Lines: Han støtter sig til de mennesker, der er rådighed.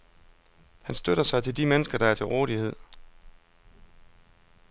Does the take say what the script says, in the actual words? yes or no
no